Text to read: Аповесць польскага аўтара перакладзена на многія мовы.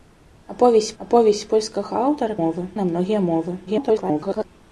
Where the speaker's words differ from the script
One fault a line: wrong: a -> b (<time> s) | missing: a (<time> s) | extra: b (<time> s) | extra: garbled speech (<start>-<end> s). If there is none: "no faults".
extra: аповесць (1.0 s)
wrong: перакладзена -> мовы (2.4 s)
extra: garbled speech (3.7-4.4 s)